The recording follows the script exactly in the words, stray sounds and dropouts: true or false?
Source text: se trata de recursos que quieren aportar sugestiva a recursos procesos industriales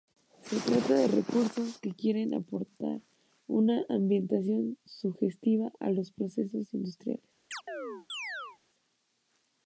false